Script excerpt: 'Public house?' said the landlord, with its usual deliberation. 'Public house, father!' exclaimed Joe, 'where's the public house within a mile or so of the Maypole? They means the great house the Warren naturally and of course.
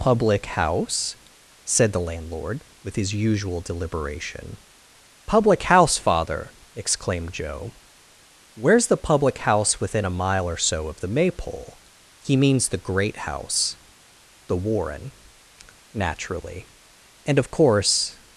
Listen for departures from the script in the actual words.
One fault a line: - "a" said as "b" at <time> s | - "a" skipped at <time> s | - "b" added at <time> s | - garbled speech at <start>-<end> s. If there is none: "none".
- "its" said as "his" at 3.0 s
- "They" said as "He" at 12.2 s